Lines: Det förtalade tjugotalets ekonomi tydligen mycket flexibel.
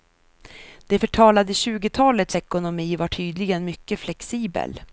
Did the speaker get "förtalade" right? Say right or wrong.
right